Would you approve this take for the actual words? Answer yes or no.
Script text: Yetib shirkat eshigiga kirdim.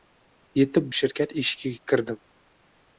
yes